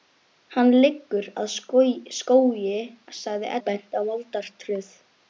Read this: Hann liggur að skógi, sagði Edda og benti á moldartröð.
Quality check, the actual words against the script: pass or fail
fail